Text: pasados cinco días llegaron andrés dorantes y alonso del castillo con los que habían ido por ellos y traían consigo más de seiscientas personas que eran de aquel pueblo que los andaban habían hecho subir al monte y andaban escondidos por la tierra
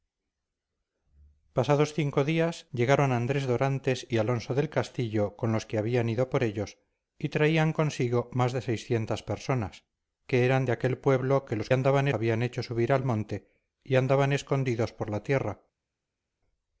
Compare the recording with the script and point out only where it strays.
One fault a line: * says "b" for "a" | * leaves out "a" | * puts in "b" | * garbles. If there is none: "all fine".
all fine